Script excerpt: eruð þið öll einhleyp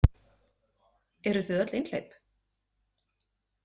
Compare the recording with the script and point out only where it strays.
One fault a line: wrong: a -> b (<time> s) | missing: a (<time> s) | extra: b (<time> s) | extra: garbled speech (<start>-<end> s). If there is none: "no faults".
no faults